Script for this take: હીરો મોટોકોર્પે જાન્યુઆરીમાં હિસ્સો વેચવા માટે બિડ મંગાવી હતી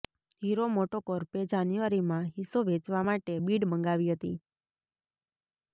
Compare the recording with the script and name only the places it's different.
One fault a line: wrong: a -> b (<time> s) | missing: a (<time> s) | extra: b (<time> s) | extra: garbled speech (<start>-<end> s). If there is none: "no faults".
no faults